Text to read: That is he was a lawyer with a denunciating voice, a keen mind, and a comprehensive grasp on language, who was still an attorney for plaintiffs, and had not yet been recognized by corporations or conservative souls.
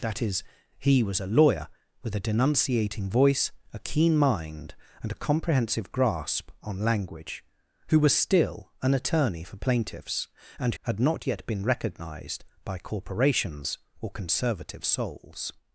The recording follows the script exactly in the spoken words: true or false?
true